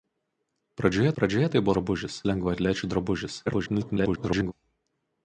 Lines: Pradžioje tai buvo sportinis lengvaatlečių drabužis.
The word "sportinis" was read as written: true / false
false